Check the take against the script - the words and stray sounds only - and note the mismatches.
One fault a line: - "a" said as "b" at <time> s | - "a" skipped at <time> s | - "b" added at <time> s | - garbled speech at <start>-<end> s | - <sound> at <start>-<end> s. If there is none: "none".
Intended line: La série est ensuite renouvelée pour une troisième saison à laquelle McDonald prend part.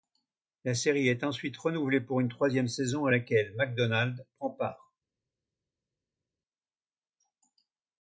none